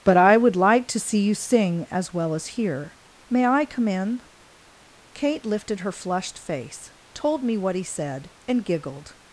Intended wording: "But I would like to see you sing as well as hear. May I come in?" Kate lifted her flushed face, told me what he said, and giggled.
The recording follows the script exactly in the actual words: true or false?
true